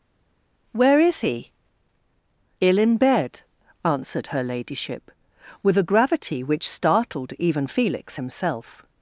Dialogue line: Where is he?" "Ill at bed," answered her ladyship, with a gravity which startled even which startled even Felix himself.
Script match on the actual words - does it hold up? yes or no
no